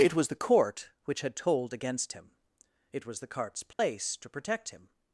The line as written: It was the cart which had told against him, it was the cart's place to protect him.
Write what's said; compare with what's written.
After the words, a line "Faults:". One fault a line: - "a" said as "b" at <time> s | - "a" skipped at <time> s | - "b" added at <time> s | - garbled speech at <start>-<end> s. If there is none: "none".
It was the court which had told against him, it was the cart's place to protect him.
Faults:
- "cart" said as "court" at 0.3 s